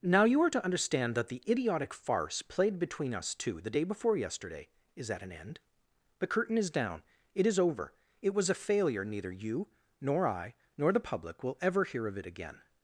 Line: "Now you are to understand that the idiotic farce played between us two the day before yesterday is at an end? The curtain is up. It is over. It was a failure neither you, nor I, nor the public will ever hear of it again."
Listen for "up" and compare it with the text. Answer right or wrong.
wrong